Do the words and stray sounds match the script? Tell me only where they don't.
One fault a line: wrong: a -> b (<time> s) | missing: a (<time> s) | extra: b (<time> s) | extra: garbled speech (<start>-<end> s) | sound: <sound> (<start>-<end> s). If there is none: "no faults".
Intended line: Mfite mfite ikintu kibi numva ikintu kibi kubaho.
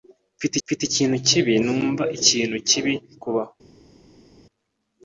no faults